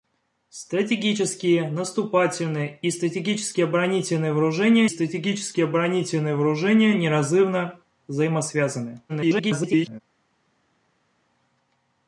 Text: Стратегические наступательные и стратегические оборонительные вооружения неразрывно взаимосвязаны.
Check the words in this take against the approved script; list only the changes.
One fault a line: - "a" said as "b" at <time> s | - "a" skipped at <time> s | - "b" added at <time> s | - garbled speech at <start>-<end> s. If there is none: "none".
- "стратегические оборонительные вооружения" added at 4.9 s
- garbled speech at 9.1-10.0 s